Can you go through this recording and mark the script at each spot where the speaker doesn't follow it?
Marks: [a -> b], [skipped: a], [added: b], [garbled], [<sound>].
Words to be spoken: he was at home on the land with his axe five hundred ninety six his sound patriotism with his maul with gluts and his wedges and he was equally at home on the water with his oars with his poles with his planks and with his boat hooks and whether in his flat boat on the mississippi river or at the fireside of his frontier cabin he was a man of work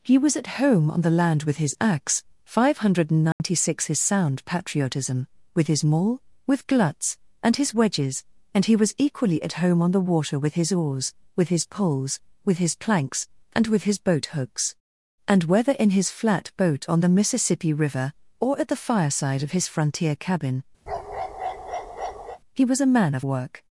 he was at home on the land with his axe five hundred ninety [dropout] six his sound patriotism with his maul with gluts and his wedges and he was equally at home on the water with his oars with his poles with his planks and with his boat hooks and whether in his flat boat on the mississippi river or at the fireside of his frontier cabin [bark] he was a man of work